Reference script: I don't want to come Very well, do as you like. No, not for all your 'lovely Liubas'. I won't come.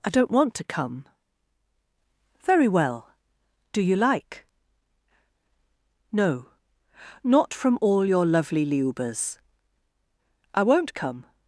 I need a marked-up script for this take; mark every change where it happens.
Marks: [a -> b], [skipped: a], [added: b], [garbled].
I don't want to come Very well, do [skipped: as] you like. No, not [for -> from] all your 'lovely Liubas'. I won't come.